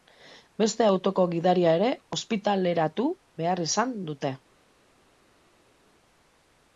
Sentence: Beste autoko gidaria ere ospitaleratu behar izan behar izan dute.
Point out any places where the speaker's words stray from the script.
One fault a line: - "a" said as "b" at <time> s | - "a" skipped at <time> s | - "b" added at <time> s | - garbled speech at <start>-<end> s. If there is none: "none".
- "behar izan" skipped at 4.0 s